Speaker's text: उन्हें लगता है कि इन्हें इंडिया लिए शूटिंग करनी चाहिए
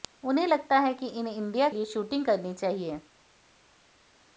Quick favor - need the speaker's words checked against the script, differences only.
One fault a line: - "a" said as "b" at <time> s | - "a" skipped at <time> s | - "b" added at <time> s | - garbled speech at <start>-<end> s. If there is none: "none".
none